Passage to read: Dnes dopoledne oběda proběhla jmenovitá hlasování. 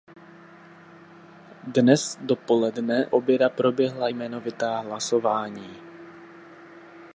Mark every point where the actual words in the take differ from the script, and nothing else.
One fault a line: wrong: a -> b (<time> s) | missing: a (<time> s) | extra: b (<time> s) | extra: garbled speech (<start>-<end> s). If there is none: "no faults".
no faults